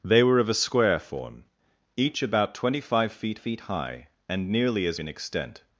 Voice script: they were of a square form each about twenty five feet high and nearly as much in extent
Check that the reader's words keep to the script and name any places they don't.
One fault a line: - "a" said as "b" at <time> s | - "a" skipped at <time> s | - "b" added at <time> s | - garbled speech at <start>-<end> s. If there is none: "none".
- "feet" added at 3.3 s
- "much" skipped at 5.0 s